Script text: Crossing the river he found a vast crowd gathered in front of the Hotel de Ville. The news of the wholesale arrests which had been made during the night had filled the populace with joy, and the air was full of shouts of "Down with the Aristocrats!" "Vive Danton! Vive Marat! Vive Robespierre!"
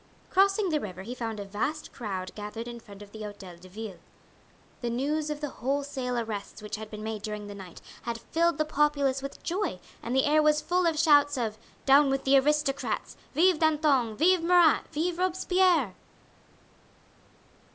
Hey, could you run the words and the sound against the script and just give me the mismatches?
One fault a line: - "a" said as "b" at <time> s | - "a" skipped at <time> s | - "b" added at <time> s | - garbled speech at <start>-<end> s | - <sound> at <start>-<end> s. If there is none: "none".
none